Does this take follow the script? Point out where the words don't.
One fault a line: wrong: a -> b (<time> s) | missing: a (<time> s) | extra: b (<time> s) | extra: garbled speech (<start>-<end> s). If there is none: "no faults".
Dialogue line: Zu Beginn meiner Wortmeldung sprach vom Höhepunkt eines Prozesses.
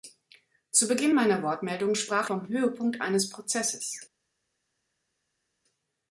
no faults